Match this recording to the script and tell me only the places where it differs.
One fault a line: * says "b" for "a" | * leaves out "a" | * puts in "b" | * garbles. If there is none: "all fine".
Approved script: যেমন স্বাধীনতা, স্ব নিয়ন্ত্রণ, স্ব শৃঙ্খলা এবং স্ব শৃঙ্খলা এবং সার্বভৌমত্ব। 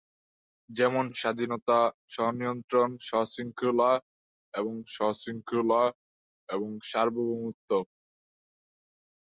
all fine